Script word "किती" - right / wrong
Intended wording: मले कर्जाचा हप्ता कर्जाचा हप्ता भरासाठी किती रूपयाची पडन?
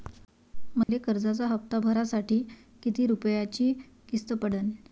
right